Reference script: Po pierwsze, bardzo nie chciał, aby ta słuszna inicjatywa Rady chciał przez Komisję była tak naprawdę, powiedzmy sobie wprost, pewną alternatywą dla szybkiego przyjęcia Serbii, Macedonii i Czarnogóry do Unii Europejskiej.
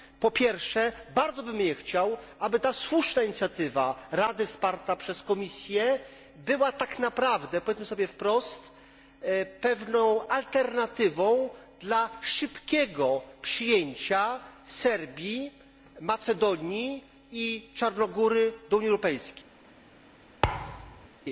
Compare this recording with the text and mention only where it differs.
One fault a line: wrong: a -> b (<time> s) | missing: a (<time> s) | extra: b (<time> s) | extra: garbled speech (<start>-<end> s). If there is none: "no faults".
extra: bym (1.4 s)
wrong: chciał -> wsparta (4.5 s)